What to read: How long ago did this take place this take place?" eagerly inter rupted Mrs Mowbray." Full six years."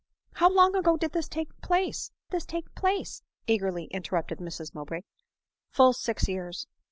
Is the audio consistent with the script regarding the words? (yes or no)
yes